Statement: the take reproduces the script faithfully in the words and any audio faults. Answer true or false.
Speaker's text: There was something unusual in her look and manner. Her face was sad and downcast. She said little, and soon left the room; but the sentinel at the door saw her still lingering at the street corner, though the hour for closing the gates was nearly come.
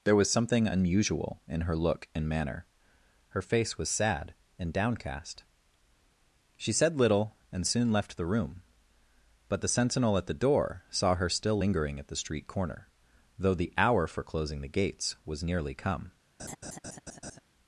false